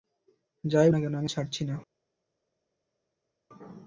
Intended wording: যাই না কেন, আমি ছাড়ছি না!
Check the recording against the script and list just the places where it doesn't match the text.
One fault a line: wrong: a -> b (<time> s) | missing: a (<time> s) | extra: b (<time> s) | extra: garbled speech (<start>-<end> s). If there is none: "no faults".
no faults